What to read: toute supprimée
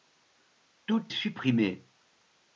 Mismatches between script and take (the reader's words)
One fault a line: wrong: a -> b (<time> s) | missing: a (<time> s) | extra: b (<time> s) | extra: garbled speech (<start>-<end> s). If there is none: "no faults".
no faults